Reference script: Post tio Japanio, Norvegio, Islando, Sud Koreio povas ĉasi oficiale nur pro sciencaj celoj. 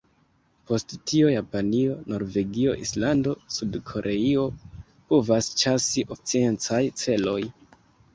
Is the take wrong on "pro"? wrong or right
wrong